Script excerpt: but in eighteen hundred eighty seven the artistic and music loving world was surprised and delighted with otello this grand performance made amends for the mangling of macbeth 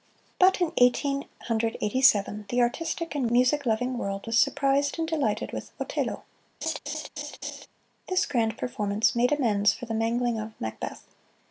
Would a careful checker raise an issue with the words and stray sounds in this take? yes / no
yes